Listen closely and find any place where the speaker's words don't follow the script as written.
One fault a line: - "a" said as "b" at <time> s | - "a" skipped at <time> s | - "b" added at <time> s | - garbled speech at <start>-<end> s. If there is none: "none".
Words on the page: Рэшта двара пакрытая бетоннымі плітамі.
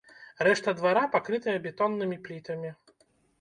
none